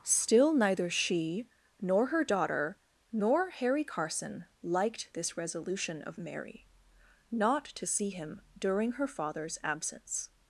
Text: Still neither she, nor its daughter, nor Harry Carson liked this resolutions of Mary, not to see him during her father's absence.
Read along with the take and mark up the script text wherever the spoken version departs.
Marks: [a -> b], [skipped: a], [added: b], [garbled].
Still neither she, nor [its -> her] daughter, nor Harry Carson liked this [resolutions -> resolution] of Mary, not to see him during her father's absence.